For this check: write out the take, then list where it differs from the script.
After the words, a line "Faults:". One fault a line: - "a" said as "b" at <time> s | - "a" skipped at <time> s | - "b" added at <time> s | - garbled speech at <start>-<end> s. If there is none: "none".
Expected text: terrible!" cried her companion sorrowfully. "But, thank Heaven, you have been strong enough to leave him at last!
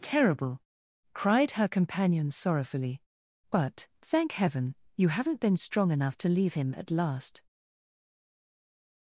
terrible!" cried her companion sorrowfully. "But, thank Heaven, you haven't been strong enough to leave him at last!
Faults:
- "have" said as "haven't" at 5.1 s